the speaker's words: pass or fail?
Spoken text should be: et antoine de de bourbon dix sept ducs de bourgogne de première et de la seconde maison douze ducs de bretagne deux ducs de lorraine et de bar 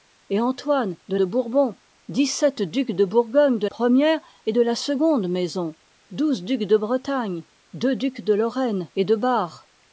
pass